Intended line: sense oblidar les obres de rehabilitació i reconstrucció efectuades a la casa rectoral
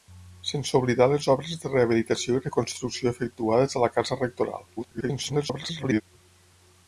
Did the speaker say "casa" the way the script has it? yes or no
yes